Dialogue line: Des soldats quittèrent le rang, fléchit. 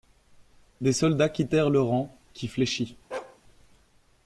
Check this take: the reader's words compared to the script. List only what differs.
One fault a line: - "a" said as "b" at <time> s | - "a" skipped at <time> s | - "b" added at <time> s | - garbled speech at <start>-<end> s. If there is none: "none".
- "qui" added at 2.3 s